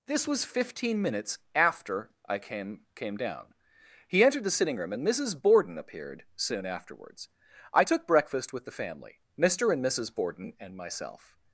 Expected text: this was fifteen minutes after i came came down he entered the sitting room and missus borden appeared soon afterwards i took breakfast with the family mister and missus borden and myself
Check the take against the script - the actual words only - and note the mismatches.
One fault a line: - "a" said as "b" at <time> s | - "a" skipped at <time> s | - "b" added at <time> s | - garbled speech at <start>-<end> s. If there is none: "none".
none